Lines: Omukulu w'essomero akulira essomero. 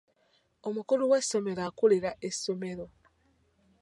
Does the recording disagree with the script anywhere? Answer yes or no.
no